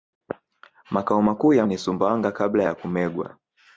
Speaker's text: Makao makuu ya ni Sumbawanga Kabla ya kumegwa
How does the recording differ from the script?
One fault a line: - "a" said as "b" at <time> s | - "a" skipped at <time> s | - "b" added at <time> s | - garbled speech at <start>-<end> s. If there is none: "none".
none